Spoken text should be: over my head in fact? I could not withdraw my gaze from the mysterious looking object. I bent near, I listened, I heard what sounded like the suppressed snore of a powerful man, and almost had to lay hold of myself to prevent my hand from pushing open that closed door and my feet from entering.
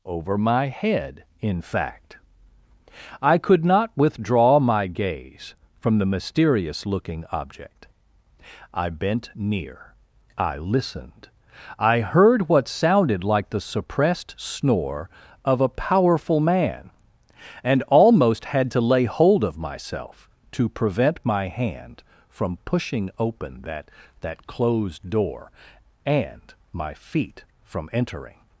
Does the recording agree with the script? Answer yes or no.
no